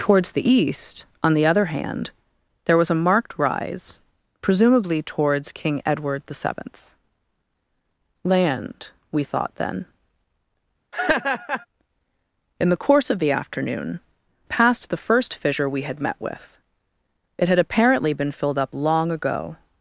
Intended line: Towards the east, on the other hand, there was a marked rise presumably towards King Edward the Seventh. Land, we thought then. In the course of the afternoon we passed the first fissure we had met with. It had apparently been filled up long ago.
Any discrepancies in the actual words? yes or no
yes